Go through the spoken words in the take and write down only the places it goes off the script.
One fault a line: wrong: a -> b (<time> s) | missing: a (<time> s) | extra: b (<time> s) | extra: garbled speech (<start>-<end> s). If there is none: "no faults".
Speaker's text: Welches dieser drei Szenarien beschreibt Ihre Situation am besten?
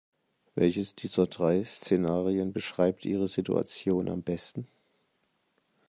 no faults